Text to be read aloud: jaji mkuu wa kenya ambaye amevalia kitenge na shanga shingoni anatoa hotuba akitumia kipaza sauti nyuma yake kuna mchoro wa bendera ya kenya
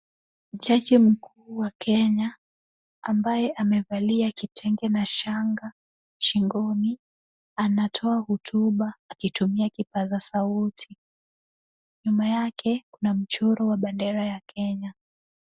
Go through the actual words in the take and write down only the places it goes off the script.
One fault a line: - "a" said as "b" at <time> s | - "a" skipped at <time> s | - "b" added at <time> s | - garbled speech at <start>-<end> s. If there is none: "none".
none